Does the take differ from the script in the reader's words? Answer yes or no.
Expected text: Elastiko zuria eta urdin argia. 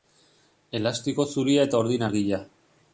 no